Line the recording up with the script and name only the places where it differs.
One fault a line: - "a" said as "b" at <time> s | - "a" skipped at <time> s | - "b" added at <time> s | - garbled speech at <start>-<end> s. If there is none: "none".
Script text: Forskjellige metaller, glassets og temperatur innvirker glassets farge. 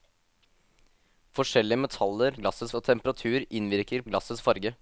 none